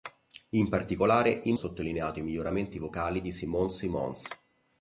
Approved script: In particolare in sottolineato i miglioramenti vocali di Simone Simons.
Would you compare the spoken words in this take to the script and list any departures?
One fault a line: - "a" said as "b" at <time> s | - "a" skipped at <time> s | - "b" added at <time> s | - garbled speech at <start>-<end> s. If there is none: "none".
none